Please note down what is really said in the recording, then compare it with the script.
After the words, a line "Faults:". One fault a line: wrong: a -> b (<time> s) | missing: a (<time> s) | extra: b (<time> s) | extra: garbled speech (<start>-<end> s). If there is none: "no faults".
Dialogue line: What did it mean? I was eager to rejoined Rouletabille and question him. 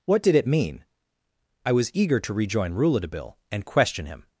What did it mean? I was eager to rejoin Rouletabille and question him.
Faults:
wrong: rejoined -> rejoin (2.3 s)